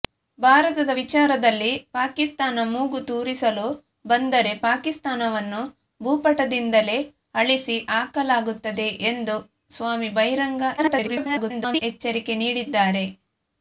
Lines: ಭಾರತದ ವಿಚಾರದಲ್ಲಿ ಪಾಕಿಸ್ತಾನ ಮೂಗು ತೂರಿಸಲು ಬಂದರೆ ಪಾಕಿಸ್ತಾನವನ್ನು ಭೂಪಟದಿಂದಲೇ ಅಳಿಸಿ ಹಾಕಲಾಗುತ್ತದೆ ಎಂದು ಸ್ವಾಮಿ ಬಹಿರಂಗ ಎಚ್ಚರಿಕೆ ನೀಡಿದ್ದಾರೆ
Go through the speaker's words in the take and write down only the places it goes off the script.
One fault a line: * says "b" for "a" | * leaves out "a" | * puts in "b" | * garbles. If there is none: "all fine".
* garbles